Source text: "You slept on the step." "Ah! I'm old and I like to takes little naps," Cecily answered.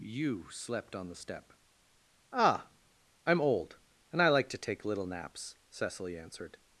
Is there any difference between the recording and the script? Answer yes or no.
yes